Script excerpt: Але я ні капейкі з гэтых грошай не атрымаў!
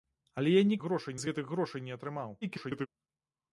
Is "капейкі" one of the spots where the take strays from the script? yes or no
yes